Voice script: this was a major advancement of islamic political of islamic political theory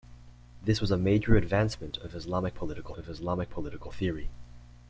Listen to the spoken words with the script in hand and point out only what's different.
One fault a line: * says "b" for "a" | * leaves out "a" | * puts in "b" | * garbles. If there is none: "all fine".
all fine